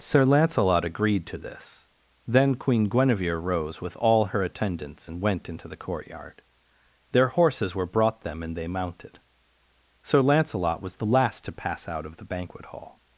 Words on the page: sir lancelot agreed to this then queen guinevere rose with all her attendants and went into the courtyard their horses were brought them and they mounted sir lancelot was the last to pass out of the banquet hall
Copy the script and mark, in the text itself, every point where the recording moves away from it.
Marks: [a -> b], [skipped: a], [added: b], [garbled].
sir lancelot agreed to this then queen guinevere rose with all her attendants and went into the courtyard their horses were brought them and they mounted sir lancelot was the last to pass out of the banquet hall